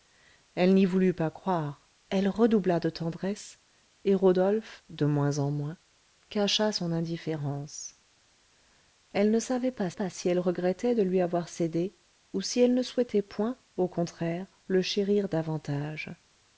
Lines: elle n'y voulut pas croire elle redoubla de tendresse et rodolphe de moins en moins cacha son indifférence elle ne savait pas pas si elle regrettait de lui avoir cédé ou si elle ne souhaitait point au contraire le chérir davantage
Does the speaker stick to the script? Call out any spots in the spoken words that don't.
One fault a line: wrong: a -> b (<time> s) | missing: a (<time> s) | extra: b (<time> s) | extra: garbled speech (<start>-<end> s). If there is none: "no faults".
no faults